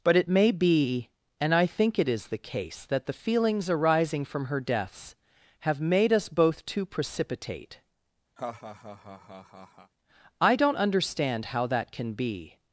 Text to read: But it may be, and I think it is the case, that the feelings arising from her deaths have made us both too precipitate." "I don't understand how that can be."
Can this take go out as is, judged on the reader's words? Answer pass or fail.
pass